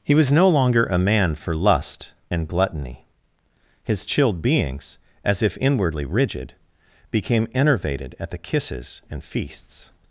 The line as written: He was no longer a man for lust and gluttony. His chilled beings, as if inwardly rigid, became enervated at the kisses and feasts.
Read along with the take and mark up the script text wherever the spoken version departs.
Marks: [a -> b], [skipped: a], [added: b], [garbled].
He was no longer a man for lust and gluttony. His chilled beings, as if inwardly rigid, became enervated at the kisses and feasts.